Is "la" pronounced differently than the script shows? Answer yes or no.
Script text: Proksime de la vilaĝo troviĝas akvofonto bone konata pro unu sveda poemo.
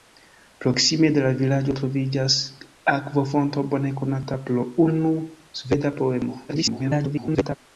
no